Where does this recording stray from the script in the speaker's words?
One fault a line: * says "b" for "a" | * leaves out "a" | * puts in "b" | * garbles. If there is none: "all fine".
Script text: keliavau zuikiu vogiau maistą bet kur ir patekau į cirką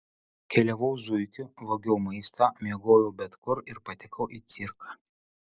* puts in "miegojau"